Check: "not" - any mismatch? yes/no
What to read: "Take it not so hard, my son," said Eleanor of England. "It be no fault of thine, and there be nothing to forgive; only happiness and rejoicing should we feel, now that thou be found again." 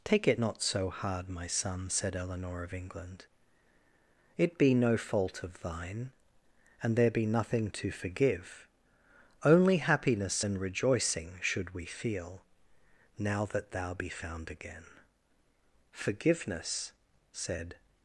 no